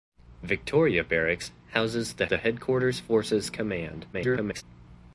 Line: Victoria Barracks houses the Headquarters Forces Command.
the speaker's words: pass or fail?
fail